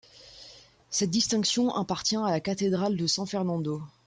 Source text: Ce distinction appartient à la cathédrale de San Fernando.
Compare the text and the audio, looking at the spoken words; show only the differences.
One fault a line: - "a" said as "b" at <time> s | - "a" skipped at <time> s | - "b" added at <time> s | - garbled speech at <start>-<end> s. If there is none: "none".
- "Ce" said as "Cette" at 0.9 s